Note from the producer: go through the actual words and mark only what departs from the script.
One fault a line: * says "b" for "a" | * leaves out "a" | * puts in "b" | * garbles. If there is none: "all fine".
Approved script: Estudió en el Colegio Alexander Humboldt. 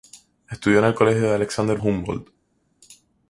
all fine